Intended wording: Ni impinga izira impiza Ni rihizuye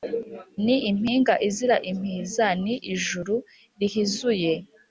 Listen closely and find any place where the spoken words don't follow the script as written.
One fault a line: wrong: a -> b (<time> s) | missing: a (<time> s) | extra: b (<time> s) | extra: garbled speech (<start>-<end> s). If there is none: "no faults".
extra: ijuru (2.9 s)